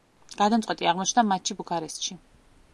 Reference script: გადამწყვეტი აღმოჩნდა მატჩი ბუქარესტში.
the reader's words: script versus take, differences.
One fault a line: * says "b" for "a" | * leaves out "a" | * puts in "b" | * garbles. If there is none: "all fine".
all fine